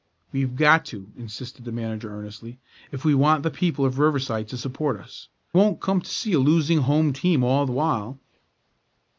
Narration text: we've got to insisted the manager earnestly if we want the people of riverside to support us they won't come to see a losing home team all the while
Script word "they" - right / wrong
wrong